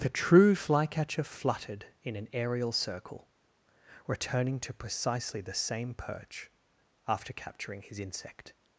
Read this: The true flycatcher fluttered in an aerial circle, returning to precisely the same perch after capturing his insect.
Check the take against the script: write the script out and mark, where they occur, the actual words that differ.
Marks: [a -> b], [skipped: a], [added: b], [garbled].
The true flycatcher fluttered in an aerial circle, returning to precisely the same perch after capturing his insect.